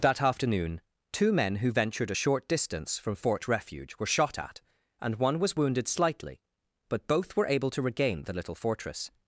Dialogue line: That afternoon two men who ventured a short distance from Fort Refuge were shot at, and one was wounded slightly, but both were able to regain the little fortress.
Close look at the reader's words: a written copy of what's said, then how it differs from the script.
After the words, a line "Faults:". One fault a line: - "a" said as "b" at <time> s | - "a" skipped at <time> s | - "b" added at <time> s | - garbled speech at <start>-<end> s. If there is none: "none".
That afternoon two men who ventured a short distance from Fort Refuge were shot at, and one was wounded slightly, but both were able to regain the little fortress.
Faults:
none